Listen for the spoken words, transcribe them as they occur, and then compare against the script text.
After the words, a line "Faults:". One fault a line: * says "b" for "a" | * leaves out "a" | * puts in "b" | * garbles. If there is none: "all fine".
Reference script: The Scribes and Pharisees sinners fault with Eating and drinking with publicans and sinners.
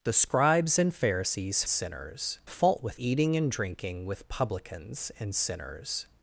The Scribes and Pharisees sinners fault with Eating and drinking with publicans and sinners.
Faults:
all fine